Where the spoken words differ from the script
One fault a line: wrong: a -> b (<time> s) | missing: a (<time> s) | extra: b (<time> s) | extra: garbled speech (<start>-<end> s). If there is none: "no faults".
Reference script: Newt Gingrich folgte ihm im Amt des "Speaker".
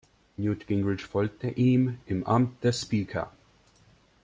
no faults